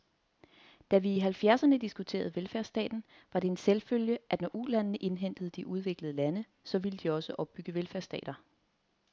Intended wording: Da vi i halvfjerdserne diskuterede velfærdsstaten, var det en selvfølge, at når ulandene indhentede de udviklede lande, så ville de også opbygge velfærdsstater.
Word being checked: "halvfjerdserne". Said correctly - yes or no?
yes